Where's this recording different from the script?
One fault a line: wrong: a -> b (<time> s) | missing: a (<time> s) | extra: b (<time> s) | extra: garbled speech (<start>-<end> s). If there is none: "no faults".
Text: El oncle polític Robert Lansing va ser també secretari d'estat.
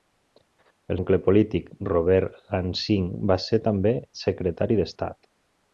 no faults